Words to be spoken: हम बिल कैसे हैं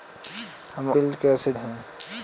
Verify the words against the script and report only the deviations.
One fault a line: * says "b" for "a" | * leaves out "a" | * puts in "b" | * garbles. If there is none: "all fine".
all fine